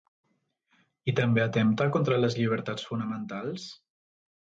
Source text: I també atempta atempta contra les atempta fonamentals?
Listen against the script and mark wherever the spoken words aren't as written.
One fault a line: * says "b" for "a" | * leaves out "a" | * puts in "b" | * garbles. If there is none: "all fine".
* leaves out "atempta"
* says "llibertats" for "atempta"